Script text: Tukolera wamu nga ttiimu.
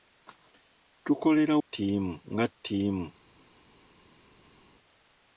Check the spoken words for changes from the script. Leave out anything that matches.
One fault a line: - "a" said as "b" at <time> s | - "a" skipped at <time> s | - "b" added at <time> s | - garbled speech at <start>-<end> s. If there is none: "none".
- "wamu" said as "ttiimu" at 1.6 s